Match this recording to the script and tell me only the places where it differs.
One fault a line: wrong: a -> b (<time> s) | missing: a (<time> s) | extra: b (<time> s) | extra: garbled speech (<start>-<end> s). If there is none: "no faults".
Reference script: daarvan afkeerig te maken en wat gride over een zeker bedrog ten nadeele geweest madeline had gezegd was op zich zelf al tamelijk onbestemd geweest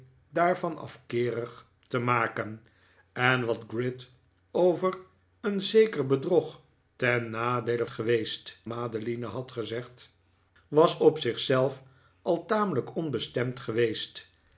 no faults